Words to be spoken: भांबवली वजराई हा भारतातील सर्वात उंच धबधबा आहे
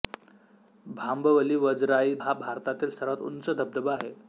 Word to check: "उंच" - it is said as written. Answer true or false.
true